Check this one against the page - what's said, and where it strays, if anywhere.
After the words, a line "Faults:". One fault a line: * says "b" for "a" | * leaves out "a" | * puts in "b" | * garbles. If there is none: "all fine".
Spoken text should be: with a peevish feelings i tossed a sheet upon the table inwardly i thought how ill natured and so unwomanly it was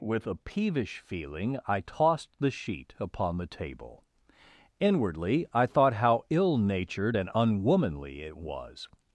with a peevish feeling i tossed the sheet upon the table inwardly i thought how ill natured and unwomanly it was
Faults:
* says "feeling" for "feelings"
* says "the" for "a"
* leaves out "so"